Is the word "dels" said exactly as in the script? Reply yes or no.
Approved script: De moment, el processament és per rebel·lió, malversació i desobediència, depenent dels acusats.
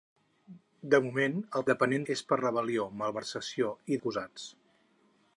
no